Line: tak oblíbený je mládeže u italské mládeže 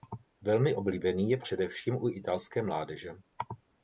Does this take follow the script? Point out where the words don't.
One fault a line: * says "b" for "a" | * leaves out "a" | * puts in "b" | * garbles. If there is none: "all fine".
* says "velmi" for "tak"
* says "především" for "mládeže"